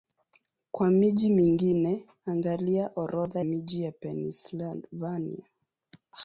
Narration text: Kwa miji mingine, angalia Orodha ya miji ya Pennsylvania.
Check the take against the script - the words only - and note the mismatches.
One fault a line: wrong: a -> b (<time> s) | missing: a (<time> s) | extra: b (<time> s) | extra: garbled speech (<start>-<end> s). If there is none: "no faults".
missing: ya (3.4 s)